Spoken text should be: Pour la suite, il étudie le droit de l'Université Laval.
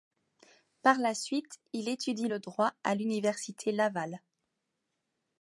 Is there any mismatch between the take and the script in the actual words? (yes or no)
yes